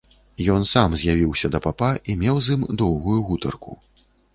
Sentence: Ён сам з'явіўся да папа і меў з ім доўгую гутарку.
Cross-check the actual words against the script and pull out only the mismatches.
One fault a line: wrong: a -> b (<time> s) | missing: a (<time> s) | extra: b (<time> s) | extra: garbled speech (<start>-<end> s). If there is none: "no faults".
no faults